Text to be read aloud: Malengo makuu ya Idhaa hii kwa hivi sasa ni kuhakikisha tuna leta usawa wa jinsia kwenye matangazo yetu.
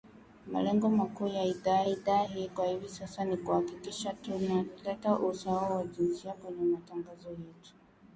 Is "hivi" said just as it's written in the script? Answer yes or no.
yes